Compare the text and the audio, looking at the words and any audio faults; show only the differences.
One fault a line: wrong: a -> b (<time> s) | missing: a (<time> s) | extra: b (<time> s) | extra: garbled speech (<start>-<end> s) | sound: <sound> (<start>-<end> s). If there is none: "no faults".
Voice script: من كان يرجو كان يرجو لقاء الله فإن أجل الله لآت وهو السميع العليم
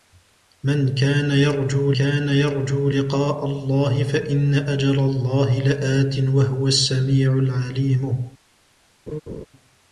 sound: laugh (9.1-9.5 s)